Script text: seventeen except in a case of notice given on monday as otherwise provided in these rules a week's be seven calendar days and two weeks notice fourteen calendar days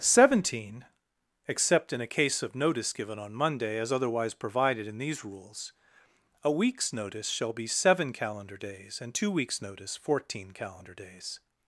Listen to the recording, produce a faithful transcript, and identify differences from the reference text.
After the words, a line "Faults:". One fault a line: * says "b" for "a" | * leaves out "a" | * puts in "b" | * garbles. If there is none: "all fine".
seventeen except in a case of notice given on monday as otherwise provided in these rules a week's notice shall be seven calendar days and two weeks notice fourteen calendar days
Faults:
* puts in "notice shall"